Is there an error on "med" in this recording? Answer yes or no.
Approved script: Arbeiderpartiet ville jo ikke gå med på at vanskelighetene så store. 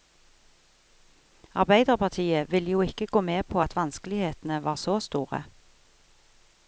no